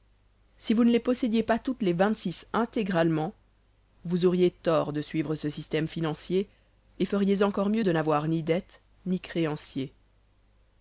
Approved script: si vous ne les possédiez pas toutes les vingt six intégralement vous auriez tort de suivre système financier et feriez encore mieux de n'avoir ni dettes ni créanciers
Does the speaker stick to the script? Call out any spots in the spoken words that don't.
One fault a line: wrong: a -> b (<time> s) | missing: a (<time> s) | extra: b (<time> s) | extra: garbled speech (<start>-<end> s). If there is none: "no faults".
extra: ce (5.4 s)